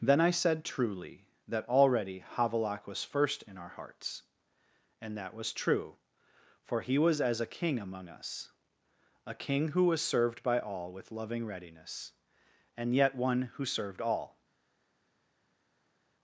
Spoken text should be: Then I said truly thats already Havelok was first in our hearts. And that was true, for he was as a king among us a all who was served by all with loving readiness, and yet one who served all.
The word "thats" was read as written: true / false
false